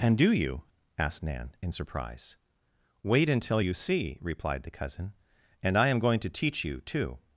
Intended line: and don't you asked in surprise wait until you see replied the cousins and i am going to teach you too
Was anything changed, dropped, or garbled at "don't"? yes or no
yes